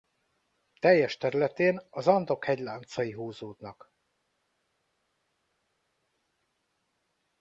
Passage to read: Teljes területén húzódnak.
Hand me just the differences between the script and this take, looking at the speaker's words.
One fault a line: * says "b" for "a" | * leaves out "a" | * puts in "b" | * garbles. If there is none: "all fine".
* puts in "az Andok hegyláncai"